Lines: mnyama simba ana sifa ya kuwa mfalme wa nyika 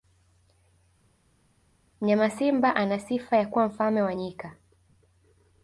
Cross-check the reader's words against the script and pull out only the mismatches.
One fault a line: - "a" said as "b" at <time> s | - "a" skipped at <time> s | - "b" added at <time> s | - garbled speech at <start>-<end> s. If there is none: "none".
none